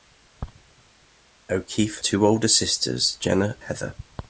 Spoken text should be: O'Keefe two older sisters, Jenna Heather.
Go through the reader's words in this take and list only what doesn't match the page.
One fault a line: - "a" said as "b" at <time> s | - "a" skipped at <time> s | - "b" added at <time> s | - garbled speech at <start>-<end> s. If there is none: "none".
none